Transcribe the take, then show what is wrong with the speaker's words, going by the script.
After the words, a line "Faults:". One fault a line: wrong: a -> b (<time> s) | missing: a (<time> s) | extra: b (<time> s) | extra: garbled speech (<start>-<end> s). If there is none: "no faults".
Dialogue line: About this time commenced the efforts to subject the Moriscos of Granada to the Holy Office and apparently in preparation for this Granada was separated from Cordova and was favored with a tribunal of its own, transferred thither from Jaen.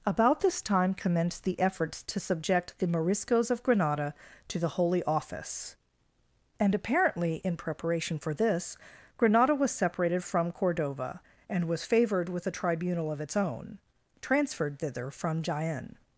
About this time commenced the efforts to subject the Moriscos of Granada to the Holy Office and apparently in preparation for this Granada was separated from Cordova and was favored with a tribunal of its own, transferred thither from Jaen.
Faults:
no faults